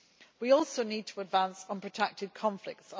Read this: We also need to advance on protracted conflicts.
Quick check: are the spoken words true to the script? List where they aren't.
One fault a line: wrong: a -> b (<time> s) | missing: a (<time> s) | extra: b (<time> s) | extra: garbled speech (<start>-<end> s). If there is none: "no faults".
no faults